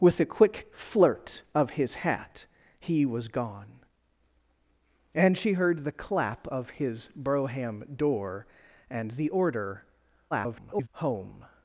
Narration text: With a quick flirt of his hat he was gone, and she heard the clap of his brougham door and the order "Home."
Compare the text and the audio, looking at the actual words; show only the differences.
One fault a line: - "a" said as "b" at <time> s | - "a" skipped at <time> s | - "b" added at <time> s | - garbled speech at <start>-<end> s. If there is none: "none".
- garbled speech at 10.3-10.9 s